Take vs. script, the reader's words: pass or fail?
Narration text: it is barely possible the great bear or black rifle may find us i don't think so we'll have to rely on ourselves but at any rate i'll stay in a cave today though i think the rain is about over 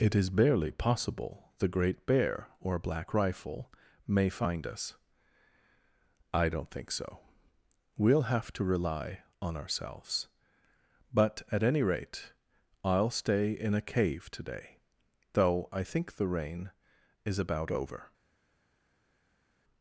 pass